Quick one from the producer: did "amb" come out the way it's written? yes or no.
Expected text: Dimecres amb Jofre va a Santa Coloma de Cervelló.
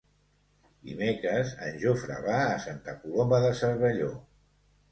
no